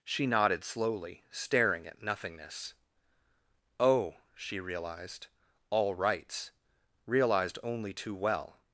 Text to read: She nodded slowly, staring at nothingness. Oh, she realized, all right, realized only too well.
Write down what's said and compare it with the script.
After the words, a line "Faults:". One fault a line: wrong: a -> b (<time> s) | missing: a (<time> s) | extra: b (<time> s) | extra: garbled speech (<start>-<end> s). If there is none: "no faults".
She nodded slowly, staring at nothingness. Oh, she realized, all rights, realized only too well.
Faults:
wrong: right -> rights (5.9 s)